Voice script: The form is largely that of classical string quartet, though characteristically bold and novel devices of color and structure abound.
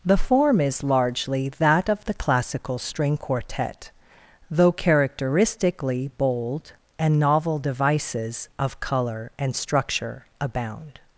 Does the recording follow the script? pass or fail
fail